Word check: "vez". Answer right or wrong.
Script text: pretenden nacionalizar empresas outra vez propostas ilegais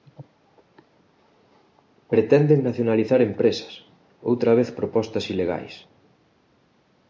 right